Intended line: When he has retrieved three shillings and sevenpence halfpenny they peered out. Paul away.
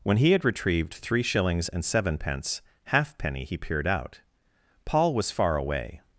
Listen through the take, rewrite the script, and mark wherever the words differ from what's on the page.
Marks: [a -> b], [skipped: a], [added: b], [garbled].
When he [has -> had] retrieved three shillings and sevenpence halfpenny [they -> he] peered out. Paul [added: was far] away.